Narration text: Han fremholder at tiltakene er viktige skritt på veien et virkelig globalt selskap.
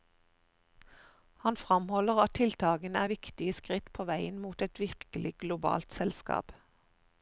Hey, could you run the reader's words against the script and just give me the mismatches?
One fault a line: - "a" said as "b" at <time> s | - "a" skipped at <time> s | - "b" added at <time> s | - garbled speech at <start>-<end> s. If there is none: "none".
- "mot" added at 4.5 s